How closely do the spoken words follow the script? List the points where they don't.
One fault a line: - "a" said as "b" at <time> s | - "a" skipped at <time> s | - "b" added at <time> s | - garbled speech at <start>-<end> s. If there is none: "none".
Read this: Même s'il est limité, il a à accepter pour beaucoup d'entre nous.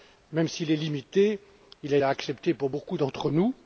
none